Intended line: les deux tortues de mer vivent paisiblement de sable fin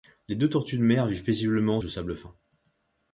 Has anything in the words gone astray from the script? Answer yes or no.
no